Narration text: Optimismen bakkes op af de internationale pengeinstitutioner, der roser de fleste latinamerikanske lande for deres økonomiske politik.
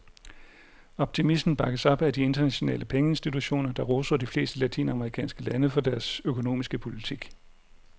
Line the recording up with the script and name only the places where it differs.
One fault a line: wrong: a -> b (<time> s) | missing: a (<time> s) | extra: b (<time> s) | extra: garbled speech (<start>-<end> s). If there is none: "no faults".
no faults